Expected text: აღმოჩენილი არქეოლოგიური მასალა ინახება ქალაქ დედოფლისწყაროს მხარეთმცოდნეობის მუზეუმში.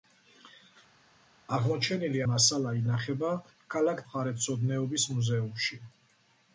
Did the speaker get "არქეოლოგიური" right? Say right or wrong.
wrong